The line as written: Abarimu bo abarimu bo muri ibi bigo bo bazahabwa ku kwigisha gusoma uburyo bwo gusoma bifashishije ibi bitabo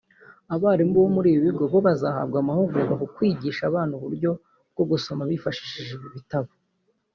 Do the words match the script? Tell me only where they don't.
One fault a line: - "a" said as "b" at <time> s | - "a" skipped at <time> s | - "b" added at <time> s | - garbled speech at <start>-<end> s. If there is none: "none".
- "abarimu bo" skipped at 1.1 s
- "amahugurwa" added at 2.4 s
- "gusoma" said as "abana" at 3.7 s